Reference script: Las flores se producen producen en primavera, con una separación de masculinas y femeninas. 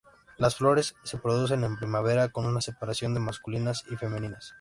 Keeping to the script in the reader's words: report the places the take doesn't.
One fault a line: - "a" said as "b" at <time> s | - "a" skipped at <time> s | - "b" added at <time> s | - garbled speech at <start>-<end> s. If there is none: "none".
- "producen" skipped at 1.6 s